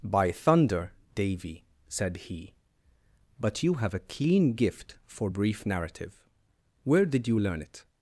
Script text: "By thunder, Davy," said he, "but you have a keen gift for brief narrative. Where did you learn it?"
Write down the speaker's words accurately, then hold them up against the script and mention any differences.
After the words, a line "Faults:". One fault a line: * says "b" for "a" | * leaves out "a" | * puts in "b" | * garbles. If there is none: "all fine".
"By thunder, Davy," said he, "but you have a keen gift for brief narrative. Where did you learn it?"
Faults:
all fine